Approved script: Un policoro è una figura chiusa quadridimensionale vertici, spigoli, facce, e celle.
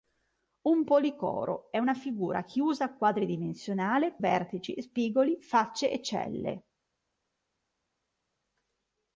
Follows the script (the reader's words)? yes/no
yes